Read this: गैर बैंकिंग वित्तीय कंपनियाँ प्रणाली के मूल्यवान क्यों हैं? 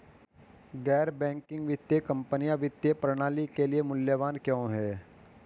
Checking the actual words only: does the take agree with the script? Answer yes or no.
no